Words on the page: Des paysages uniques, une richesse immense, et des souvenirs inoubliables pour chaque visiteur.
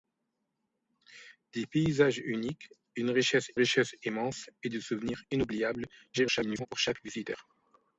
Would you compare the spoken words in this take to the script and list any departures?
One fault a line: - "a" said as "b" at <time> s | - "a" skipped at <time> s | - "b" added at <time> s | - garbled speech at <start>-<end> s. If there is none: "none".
- "richesse" added at 3.5 s
- garbled speech at 6.1-6.7 s